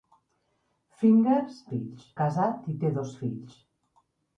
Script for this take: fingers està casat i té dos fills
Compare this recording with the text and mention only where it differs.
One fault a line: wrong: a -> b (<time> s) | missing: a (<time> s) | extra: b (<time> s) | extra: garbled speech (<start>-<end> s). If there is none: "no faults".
wrong: està -> fills (1.7 s)